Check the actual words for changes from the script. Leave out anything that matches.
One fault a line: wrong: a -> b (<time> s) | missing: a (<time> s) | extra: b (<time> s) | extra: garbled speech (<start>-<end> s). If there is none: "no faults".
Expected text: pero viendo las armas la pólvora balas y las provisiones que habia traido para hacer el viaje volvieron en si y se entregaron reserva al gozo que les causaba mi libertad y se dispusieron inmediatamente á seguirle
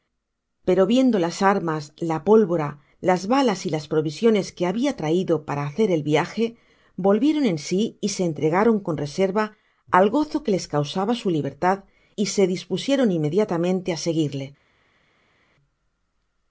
extra: las (3.0 s)
extra: con (8.8 s)
wrong: mi -> su (11.1 s)